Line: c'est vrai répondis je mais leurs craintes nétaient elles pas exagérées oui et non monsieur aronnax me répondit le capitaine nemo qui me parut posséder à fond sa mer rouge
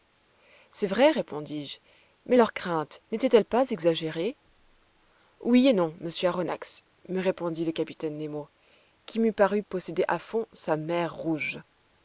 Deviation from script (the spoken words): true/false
false